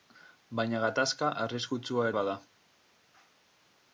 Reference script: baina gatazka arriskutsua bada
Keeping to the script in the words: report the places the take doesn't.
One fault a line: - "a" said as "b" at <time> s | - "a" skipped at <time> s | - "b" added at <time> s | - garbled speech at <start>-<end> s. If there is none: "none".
none